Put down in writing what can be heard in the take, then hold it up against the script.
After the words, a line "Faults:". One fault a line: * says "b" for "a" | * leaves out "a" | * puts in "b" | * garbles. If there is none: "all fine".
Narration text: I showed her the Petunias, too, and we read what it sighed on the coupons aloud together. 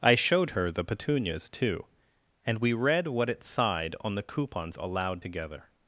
I showed her the Petunias, too, and we read what it sighed on the coupons aloud together.
Faults:
all fine